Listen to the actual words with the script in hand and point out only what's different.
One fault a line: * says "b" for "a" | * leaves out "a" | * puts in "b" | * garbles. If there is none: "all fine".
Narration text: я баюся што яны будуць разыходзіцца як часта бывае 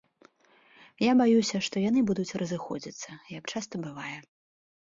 all fine